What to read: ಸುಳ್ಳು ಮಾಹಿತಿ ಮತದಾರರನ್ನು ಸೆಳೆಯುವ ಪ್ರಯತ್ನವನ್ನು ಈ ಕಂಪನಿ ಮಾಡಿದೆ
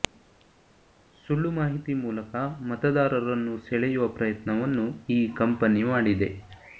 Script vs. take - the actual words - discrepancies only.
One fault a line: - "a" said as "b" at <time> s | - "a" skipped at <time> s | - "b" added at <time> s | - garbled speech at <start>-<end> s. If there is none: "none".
- "ಮೂಲಕ" added at 1.9 s